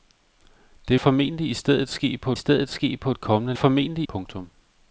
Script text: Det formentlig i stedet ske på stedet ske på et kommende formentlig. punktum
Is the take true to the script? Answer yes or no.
yes